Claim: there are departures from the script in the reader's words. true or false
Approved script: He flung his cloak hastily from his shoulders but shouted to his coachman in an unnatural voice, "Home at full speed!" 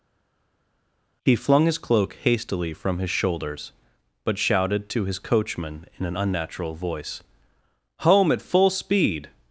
false